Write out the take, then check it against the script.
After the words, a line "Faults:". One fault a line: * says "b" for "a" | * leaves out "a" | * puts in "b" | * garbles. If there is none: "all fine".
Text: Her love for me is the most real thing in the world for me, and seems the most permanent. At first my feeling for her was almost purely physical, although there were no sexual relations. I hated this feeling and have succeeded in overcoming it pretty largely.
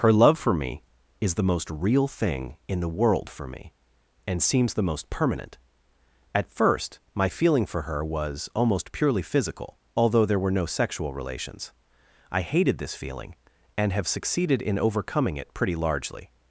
Her love for me is the most real thing in the world for me, and seems the most permanent. At first my feeling for her was almost purely physical, although there were no sexual relations. I hated this feeling and have succeeded in overcoming it pretty largely.
Faults:
all fine